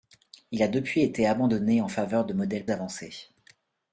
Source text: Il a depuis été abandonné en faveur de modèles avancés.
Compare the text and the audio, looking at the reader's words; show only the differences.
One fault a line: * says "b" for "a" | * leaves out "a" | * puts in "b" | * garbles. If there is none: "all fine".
all fine